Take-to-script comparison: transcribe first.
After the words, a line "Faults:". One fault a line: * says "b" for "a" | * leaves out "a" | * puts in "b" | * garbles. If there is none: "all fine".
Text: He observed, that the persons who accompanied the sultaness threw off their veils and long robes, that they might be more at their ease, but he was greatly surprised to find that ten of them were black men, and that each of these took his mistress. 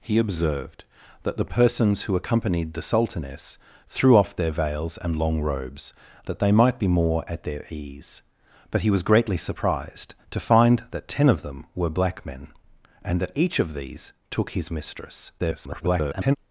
He observed, that the persons who accompanied the sultaness threw off their veils and long robes, that they might be more at their ease, but he was greatly surprised to find that ten of them were black men, and that each of these took his mistress. [garbled]
Faults:
* garbles